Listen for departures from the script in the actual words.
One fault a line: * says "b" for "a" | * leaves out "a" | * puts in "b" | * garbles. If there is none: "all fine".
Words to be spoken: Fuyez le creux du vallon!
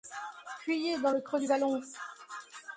* puts in "dans"